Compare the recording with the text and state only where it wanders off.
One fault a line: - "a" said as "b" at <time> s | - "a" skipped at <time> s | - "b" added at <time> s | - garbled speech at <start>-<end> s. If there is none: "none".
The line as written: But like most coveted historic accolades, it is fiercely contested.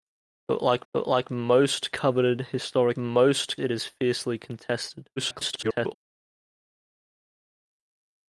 - "but like" added at 0.9 s
- "accolades" said as "most" at 3.0 s
- garbled speech at 5.2-5.9 s